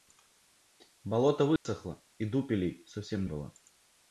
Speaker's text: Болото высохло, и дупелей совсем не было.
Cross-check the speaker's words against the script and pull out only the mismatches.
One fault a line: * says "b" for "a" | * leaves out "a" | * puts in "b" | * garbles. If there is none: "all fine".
* leaves out "не"